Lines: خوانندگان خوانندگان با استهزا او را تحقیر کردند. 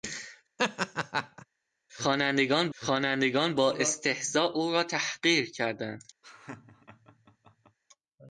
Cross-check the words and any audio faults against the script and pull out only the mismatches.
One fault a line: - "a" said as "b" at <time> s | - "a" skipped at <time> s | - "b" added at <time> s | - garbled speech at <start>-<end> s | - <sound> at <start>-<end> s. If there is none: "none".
- laugh at 0.6-1.5 s
- laugh at 6.2-7.8 s